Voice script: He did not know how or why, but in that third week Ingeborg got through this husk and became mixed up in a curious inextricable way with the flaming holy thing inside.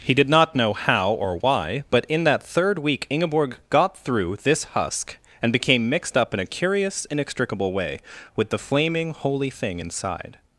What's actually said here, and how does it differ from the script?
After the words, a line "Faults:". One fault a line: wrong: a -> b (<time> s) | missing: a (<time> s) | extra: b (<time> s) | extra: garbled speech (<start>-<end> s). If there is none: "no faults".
He did not know how or why, but in that third week Ingeborg got through this husk and became mixed up in a curious inextricable way with the flaming holy thing inside.
Faults:
no faults